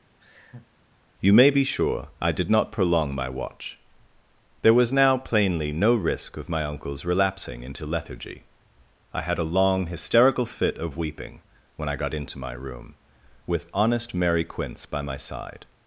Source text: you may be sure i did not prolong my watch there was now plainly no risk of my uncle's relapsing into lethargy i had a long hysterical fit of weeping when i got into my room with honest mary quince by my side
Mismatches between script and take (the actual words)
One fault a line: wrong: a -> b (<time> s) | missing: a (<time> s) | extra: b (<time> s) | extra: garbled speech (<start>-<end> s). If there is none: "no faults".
no faults